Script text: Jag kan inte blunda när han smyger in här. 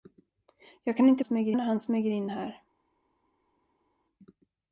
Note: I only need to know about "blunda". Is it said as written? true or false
false